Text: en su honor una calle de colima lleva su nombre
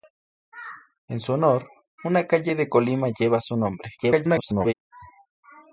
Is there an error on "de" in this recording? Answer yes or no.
no